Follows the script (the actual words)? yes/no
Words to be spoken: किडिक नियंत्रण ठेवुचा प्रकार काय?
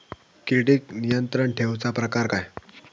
yes